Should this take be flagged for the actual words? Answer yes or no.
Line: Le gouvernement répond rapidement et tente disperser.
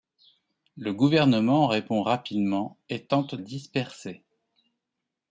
no